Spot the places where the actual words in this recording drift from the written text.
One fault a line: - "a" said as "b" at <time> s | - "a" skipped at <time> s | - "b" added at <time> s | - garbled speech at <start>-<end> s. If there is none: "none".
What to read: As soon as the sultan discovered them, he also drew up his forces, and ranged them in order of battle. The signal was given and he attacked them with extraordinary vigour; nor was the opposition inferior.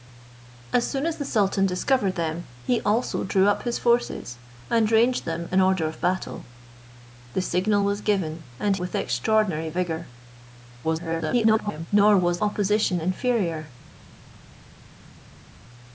- "he attacked them" skipped at 8.8 s
- garbled speech at 10.8-11.9 s
- "the" skipped at 12.4 s